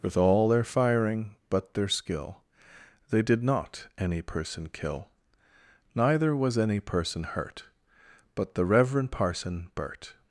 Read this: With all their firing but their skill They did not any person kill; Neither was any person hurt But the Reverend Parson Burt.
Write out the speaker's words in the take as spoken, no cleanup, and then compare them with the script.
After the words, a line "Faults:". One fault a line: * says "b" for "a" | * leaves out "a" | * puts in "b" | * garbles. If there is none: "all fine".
With all their firing but their skill They did not any person kill; Neither was any person hurt But the Reverend Parson Burt.
Faults:
all fine